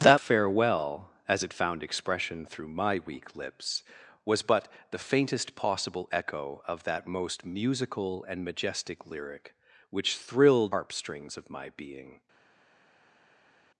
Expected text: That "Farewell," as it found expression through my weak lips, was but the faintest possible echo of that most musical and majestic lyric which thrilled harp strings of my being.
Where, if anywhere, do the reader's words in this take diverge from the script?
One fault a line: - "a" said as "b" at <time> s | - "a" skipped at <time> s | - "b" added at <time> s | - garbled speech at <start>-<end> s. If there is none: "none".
none